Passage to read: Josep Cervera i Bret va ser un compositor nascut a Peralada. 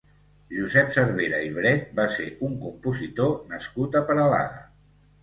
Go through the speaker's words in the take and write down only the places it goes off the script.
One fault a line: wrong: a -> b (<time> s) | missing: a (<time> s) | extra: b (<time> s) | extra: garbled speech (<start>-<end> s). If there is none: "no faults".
no faults